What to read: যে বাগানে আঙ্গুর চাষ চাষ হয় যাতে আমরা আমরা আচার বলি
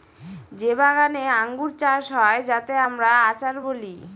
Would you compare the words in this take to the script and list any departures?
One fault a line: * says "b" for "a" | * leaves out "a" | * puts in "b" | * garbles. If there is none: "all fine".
* leaves out "চাষ"
* leaves out "আমরা"